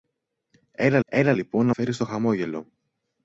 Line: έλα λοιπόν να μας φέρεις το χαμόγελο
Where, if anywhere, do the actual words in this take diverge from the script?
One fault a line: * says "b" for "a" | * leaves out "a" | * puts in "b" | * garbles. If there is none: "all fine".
* puts in "έλα"
* leaves out "μας"